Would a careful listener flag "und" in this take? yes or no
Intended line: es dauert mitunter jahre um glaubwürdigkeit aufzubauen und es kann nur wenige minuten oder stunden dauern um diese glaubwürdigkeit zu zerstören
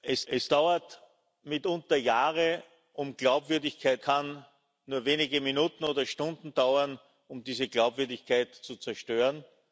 yes